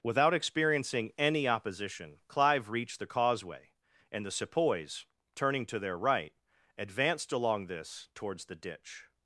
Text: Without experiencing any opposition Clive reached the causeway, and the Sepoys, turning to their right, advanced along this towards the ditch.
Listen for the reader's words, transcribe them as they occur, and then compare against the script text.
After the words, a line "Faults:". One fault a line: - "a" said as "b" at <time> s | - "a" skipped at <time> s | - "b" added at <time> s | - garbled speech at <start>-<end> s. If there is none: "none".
Without experiencing any opposition Clive reached the causeway, and the Sepoys, turning to their right, advanced along this towards the ditch.
Faults:
none